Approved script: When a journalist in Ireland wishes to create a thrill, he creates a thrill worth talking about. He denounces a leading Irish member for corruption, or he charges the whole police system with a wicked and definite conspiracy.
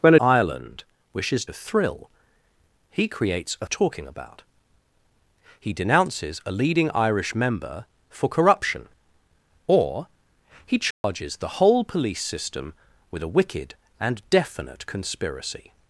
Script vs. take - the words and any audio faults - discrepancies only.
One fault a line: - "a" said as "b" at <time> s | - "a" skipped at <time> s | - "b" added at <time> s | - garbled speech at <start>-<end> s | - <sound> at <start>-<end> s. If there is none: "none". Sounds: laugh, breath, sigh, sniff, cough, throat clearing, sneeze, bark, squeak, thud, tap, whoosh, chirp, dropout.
- "a journalist in" skipped at 0.1 s
- "to create" skipped at 1.5 s
- "thrill worth" skipped at 3.7 s
- dropout at 10.9-11.0 s